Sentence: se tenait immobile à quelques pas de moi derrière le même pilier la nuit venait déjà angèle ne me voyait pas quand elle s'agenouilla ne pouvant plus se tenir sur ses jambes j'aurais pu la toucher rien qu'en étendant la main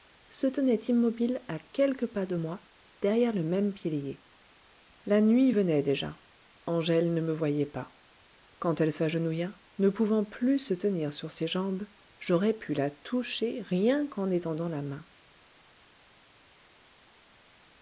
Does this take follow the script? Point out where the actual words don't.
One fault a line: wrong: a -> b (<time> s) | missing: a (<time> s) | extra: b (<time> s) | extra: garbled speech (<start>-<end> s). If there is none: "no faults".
no faults